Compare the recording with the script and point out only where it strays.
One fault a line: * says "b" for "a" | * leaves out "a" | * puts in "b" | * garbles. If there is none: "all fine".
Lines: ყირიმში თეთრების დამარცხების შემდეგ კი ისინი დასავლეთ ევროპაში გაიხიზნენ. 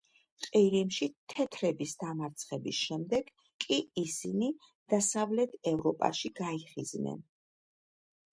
all fine